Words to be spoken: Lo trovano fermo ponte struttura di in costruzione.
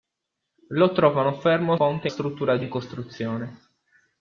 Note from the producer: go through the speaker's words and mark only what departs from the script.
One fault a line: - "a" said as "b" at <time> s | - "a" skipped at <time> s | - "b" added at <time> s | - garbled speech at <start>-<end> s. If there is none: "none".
none